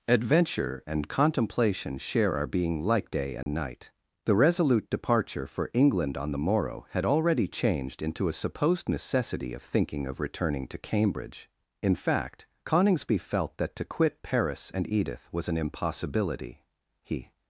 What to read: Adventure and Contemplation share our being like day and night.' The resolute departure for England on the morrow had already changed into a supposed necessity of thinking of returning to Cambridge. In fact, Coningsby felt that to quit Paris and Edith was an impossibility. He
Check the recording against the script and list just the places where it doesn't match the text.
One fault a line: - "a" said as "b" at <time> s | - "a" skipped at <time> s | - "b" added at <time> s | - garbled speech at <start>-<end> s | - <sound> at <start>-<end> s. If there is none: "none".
- dropout at 3.4-3.5 s